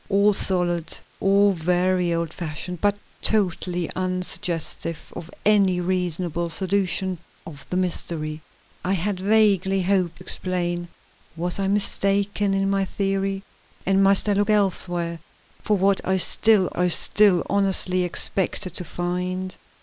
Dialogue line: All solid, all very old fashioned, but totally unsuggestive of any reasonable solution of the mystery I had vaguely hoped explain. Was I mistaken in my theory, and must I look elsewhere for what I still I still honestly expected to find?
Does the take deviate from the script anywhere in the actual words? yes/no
no